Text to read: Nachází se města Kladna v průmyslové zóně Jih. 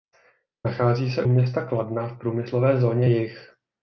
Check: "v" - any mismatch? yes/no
no